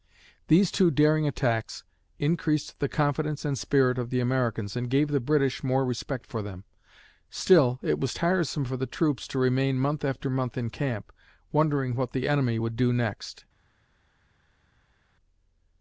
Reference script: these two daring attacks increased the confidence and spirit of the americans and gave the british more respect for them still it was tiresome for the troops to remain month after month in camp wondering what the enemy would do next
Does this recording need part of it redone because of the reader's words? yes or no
no